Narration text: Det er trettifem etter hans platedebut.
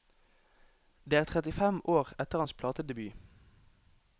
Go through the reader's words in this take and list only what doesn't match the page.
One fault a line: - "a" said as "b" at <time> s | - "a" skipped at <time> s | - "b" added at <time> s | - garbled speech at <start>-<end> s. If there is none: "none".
- "år" added at 1.9 s